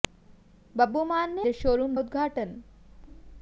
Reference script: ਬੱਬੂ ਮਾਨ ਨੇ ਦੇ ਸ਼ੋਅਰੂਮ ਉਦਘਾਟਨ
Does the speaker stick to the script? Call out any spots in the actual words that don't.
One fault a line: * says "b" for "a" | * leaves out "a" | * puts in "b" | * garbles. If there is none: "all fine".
all fine